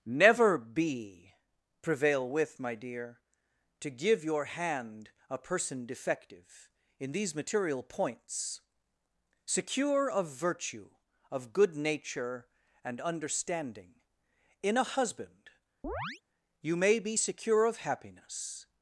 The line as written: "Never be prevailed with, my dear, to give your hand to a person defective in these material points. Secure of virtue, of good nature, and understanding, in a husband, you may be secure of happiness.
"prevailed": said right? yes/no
no